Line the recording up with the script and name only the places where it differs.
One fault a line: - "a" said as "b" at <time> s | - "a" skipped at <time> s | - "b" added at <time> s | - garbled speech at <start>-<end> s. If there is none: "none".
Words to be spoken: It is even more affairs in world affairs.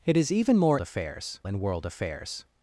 none